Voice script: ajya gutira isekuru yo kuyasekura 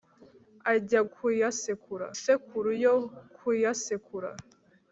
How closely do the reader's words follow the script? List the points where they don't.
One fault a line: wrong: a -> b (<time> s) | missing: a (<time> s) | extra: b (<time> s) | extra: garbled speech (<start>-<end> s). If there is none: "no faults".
wrong: gutira -> kuyasekura (1.1 s)